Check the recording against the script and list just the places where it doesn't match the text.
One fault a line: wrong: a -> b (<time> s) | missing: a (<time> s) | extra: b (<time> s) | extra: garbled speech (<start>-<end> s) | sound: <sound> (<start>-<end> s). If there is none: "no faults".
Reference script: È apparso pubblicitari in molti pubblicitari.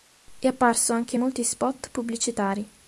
wrong: pubblicitari -> anche (0.9 s)
extra: spot (1.4 s)